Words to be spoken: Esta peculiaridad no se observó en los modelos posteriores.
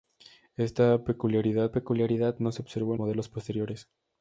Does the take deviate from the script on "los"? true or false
true